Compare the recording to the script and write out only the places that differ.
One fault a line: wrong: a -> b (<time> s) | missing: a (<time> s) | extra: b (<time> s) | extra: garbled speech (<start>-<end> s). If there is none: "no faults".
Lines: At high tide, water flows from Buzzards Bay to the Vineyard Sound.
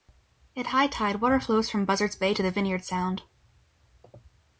no faults